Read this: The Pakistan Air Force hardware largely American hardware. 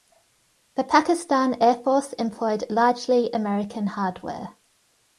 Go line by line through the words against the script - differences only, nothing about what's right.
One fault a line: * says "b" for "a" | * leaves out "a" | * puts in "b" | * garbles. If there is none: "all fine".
* says "employed" for "hardware"